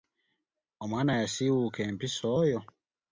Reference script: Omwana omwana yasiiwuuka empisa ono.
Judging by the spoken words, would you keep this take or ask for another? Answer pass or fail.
fail